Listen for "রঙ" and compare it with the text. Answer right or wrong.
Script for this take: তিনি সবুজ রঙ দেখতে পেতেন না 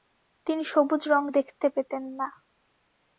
right